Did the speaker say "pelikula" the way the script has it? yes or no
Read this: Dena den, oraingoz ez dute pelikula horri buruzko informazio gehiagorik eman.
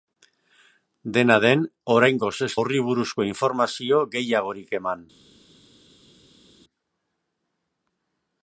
no